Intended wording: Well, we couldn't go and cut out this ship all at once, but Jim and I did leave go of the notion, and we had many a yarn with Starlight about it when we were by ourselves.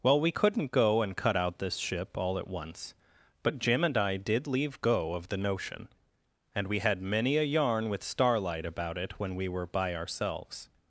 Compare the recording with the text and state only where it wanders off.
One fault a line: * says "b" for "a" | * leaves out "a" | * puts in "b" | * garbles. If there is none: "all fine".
all fine